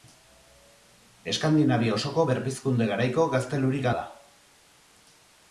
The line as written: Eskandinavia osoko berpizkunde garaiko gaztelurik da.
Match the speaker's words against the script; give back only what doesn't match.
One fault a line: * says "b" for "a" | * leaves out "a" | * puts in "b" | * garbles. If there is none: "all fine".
all fine